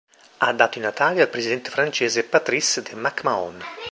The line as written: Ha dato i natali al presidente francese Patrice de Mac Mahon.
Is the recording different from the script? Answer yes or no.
no